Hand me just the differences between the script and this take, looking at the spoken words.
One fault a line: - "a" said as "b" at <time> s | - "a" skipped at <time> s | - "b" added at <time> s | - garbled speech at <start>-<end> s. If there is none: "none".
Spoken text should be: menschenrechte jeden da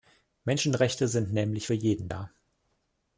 - "sind nämlich für" added at 1.1 s